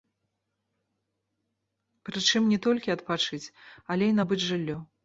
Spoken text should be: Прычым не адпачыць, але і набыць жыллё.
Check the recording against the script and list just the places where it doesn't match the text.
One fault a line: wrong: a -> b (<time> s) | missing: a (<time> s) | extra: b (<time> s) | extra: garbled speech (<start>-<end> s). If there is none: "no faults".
extra: толькі (2.7 s)